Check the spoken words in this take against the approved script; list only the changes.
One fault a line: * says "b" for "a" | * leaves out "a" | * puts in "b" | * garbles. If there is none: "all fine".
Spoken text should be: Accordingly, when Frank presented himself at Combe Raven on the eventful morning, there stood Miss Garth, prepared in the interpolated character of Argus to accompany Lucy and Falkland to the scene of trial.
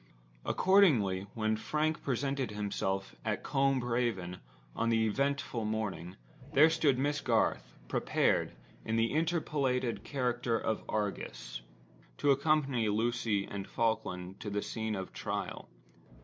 all fine